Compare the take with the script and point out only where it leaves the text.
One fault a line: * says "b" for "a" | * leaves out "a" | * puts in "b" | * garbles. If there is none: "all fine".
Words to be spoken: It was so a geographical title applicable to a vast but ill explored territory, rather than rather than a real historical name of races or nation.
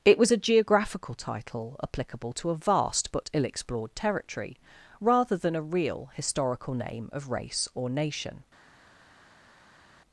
* leaves out "so"
* leaves out "rather than"
* says "race" for "races"